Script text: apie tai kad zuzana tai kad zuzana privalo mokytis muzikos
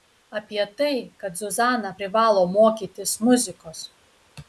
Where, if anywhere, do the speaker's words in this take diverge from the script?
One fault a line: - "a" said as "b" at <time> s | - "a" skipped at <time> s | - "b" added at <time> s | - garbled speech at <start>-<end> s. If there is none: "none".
- "tai kad zuzana" skipped at 1.9 s